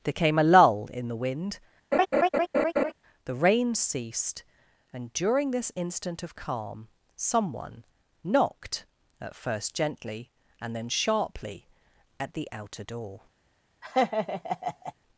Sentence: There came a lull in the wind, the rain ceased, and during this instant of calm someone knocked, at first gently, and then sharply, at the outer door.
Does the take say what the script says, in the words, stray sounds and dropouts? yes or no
no